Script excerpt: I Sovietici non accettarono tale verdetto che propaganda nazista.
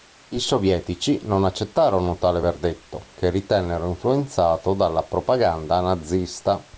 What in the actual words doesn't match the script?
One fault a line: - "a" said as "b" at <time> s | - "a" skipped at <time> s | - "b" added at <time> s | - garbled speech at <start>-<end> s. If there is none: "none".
- "ritennero influenzato dalla" added at 3.3 s